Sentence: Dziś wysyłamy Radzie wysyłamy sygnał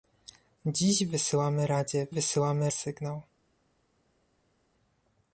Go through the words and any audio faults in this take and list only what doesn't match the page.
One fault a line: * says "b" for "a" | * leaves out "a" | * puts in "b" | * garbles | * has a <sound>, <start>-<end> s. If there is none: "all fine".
all fine